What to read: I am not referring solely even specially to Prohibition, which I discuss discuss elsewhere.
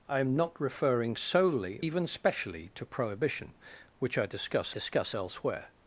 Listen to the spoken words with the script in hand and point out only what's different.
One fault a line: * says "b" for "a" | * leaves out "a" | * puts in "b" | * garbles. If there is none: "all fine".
all fine